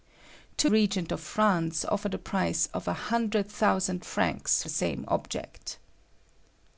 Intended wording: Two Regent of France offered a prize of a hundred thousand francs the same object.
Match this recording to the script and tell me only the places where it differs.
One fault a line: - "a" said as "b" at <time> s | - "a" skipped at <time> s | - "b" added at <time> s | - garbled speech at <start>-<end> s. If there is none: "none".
none